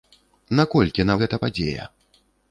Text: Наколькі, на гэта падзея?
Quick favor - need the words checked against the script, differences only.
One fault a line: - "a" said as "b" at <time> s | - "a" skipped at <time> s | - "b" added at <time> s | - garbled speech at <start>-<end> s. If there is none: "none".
none